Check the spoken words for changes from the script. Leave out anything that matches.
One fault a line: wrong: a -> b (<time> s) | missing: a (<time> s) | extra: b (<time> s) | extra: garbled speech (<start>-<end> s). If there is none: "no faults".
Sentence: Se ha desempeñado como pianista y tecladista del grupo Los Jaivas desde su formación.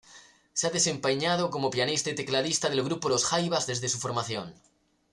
no faults